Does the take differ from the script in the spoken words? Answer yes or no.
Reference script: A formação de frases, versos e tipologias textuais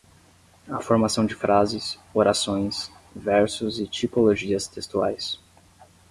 yes